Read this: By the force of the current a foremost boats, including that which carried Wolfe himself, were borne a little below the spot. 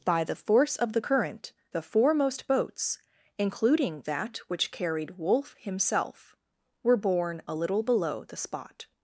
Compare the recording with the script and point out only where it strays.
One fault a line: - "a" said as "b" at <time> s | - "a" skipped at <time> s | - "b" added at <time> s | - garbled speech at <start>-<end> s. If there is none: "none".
- "a" said as "the" at 1.7 s